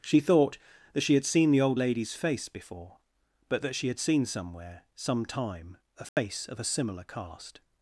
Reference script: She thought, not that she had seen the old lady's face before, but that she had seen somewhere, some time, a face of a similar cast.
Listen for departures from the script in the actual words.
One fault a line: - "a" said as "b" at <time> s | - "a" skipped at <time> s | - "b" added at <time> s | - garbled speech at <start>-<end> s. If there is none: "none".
- "not" skipped at 0.6 s